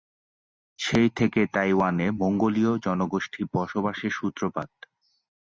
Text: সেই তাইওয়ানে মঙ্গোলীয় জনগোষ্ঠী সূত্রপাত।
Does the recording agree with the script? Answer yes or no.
no